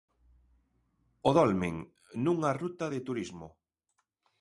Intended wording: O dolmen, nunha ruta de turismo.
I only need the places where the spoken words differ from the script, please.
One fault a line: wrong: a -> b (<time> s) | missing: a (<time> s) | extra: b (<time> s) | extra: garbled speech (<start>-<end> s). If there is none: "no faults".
no faults